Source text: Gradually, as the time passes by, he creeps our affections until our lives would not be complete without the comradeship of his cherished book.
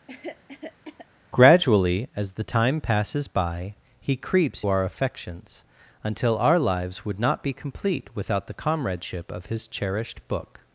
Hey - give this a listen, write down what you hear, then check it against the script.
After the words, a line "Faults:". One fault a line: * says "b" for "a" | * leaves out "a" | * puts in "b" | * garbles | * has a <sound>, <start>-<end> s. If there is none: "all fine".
Gradually, as the time passes by, he creeps our affections until our lives would not be complete without the comradeship of his cherished book.
Faults:
* has a cough, 0.1-1.1 s